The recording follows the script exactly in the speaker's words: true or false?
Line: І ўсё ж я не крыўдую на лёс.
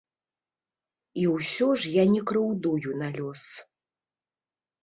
true